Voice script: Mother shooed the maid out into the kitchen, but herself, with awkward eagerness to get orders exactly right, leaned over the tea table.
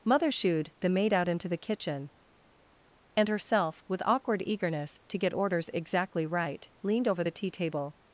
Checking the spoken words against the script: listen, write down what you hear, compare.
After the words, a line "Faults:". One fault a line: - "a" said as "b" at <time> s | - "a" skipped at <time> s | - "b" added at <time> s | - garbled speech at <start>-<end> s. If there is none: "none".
Mother shooed the maid out into the kitchen, and herself, with awkward eagerness to get orders exactly right, leaned over the tea table.
Faults:
- "but" said as "and" at 3.2 s